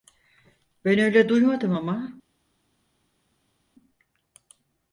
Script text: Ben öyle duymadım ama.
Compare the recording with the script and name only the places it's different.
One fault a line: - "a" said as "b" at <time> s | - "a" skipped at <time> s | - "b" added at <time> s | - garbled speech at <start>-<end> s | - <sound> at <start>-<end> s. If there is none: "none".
none